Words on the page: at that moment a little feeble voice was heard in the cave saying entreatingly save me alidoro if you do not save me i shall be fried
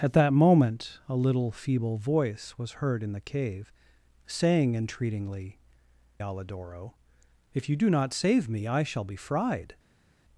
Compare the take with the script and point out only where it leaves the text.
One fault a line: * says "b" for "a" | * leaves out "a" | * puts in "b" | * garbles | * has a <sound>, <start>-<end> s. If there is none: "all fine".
* leaves out "save me"